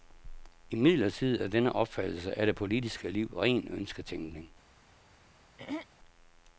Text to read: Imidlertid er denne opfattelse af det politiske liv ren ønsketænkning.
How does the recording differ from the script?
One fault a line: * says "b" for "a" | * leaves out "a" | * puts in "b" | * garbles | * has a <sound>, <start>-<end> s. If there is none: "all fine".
* has a throat clearing, 5.6-5.9 s